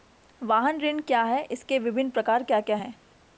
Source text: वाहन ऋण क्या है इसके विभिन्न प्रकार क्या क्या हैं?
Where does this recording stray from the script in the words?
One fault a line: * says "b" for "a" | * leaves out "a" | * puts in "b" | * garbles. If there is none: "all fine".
all fine